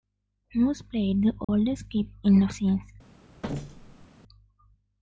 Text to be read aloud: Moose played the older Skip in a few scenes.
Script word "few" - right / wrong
wrong